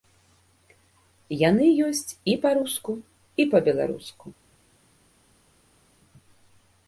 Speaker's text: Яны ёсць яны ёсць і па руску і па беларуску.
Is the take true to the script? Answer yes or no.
no